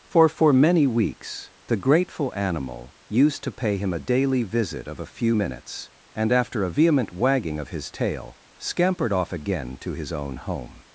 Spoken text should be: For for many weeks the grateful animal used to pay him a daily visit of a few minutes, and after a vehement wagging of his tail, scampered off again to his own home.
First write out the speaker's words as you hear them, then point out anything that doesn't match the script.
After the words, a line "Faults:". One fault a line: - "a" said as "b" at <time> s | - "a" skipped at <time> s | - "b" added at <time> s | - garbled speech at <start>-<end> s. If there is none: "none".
For for many weeks the grateful animal used to pay him a daily visit of a few minutes, and after a vehement wagging of his tail, scampered off again to his own home.
Faults:
none